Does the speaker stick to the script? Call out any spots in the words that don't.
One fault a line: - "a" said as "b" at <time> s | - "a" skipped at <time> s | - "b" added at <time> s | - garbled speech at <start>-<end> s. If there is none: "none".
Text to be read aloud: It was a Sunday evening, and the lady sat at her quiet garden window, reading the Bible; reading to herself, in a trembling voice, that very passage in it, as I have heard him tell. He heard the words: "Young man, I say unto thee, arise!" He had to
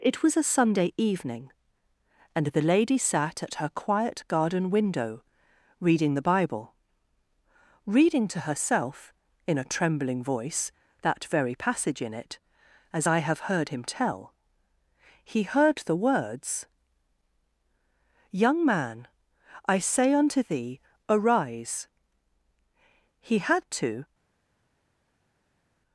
none